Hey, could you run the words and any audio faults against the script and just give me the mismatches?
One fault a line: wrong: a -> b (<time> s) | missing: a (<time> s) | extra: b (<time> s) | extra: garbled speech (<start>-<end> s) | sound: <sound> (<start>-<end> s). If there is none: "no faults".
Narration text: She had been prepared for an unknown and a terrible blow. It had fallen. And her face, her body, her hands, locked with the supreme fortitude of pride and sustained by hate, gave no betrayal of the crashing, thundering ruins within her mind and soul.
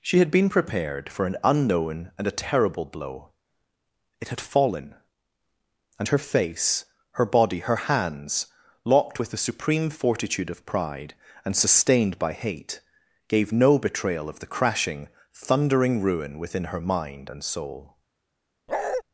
wrong: ruins -> ruin (16.0 s)
sound: bark (18.7-19.0 s)